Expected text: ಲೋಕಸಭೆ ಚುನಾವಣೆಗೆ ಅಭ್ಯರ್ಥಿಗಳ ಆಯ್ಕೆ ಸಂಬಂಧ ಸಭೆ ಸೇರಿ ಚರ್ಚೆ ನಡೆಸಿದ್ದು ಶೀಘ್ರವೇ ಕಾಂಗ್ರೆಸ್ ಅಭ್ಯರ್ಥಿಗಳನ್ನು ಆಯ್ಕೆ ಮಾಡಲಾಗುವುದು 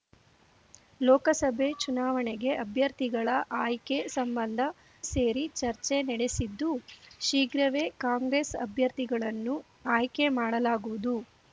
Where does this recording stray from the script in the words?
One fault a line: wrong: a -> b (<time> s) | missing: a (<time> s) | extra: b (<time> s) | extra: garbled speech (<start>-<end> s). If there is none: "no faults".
missing: ಸಭೆ (4.6 s)